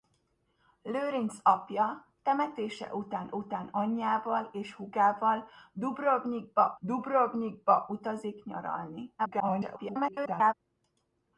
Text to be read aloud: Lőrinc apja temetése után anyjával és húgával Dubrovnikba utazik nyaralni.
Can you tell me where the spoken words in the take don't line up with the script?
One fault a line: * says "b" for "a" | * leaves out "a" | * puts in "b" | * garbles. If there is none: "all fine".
* puts in "után"
* puts in "Dubrovnikba"
* garbles